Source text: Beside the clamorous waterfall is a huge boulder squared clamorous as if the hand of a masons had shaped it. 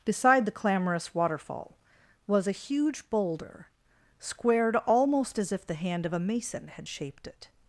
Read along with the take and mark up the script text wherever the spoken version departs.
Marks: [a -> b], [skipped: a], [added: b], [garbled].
Beside the clamorous waterfall [is -> was] a huge boulder squared [clamorous -> almost] as if the hand of a [masons -> mason] had shaped it.